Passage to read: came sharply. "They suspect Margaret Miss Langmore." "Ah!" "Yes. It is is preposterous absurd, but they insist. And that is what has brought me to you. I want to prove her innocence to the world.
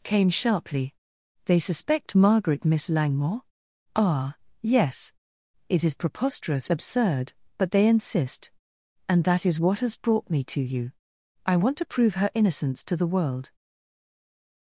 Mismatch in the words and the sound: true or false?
true